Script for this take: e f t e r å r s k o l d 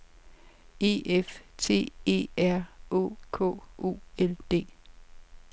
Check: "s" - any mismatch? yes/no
yes